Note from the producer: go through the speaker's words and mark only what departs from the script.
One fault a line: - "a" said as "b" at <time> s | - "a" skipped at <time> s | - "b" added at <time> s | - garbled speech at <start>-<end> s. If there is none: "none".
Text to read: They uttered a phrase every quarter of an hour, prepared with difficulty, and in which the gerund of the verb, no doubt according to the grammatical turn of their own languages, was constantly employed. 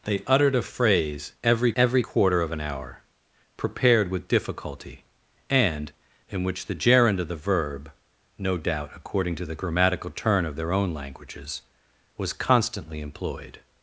- "every" added at 1.8 s